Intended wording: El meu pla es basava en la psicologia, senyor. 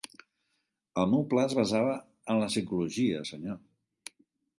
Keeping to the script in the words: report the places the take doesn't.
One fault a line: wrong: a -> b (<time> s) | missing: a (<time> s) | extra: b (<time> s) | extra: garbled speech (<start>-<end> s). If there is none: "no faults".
no faults